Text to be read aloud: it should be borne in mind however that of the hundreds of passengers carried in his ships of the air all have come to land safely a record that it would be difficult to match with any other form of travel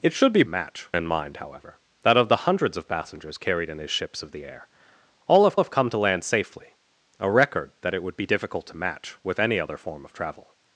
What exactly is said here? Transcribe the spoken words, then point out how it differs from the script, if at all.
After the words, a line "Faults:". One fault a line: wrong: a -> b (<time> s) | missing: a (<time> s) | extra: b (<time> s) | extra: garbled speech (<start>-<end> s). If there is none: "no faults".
it should be match in mind however that of the hundreds of passengers carried in his ships of the air all have have come to land safely a record that it would be difficult to match with any other form of travel
Faults:
wrong: borne -> match (0.5 s)
extra: have (5.6 s)